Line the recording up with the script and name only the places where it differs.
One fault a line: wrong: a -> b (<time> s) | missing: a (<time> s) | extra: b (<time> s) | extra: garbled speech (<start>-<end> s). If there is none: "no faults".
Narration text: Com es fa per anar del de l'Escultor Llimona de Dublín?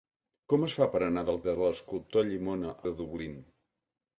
no faults